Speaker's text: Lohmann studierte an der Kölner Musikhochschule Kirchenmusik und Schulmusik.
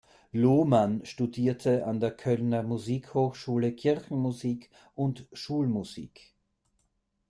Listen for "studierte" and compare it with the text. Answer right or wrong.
right